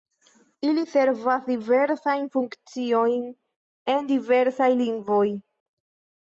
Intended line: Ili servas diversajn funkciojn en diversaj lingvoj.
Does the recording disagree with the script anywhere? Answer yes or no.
no